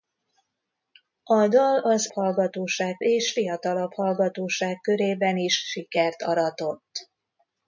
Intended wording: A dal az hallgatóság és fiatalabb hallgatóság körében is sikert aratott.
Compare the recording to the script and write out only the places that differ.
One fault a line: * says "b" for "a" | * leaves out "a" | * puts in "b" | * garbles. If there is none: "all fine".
all fine